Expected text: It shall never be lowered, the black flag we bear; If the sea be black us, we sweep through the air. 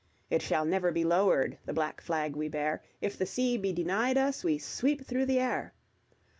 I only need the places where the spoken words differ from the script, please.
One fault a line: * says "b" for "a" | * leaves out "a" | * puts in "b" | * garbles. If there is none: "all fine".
* says "denied" for "black"